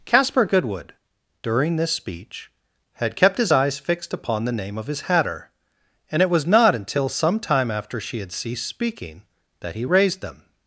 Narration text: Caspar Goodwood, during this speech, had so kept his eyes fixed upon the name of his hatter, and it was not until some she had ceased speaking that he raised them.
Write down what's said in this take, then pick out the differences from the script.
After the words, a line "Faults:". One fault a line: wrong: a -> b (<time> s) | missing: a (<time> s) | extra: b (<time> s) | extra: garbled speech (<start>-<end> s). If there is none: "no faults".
Caspar Goodwood, during this speech, had kept his eyes fixed upon the name of his hatter, and it was not until some time after she had ceased speaking that he raised them.
Faults:
missing: so (3.1 s)
extra: time after (7.4 s)